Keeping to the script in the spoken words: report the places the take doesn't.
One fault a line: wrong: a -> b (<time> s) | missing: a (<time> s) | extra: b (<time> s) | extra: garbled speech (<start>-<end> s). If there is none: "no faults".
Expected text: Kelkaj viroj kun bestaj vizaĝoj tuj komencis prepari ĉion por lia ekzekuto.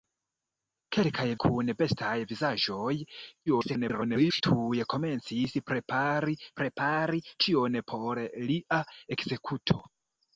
missing: viroj (1.2 s)
extra: garbled speech (3.5-4.4 s)
extra: prepari (6.6 s)